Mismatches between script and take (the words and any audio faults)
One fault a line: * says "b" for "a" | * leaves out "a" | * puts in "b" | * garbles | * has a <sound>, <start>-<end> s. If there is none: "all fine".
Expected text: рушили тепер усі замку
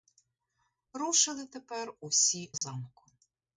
* has a dropout, 2.6-2.6 s